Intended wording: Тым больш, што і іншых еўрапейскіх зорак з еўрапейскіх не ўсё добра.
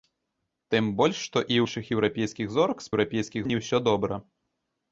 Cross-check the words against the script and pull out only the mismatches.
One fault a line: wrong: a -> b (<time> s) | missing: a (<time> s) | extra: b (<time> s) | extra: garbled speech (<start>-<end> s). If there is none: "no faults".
no faults